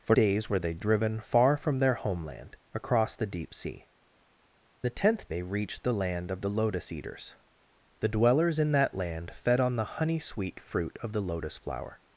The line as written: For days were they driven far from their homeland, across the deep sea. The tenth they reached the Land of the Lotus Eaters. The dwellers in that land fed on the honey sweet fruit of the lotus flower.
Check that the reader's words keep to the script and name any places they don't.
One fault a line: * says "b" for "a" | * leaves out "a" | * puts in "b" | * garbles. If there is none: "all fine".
all fine